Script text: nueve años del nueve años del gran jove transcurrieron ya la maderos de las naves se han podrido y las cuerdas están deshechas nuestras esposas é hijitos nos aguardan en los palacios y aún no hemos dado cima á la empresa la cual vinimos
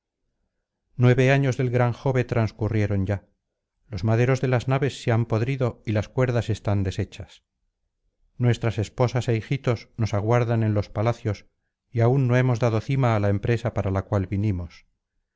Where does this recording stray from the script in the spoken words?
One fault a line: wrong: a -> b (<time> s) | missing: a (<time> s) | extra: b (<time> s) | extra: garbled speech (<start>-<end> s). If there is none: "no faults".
missing: nueve años del (1.7 s)
wrong: la -> los (3.9 s)
extra: para (13.8 s)